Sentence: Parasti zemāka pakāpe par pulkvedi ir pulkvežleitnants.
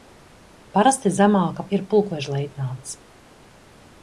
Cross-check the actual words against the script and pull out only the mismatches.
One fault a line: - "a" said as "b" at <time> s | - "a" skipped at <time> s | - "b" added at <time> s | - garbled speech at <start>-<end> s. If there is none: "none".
- "pakāpe par pulkvedi" skipped at 1.6 s